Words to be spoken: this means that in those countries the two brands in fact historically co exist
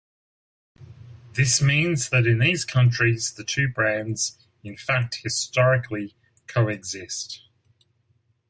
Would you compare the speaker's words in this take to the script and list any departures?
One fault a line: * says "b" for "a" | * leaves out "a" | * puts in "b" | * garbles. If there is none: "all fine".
* says "these" for "those"